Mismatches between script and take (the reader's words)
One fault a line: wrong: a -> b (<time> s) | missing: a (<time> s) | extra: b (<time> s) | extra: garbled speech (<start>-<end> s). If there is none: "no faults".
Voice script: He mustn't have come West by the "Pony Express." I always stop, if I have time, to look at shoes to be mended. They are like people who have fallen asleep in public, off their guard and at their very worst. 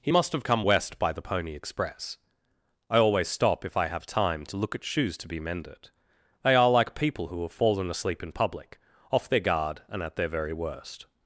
wrong: mustn't -> must (0.1 s)